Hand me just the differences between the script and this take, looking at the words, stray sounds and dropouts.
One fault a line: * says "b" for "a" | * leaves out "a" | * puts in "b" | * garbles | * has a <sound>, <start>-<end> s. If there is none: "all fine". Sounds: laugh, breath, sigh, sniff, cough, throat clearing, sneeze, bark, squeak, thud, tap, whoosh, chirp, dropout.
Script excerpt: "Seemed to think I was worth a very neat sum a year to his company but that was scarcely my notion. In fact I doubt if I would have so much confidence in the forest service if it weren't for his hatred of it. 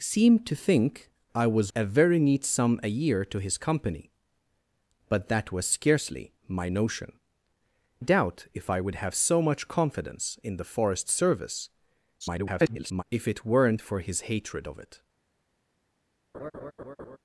* leaves out "worth"
* leaves out "In fact I"
* garbles
* has a laugh, 16.3-17.2 s